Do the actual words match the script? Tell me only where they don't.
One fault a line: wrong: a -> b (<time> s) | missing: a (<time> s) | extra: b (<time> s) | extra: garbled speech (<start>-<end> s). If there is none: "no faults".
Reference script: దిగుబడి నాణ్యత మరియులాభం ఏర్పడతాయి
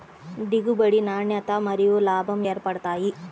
no faults